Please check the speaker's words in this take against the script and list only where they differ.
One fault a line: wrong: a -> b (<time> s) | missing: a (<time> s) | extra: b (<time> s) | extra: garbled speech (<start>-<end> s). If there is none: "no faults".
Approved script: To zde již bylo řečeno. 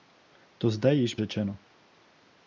missing: bylo (1.1 s)